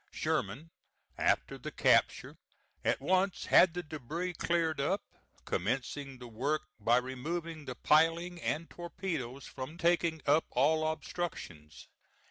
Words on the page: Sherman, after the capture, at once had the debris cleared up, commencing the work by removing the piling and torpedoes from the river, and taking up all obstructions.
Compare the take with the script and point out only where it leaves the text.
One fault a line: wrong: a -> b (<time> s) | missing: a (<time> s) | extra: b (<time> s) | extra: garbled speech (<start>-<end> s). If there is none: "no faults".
missing: the river and (9.7 s)